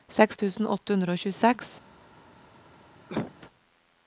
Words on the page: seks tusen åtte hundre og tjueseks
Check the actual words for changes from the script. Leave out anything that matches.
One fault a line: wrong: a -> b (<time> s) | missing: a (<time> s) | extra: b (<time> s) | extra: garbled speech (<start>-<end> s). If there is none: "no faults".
no faults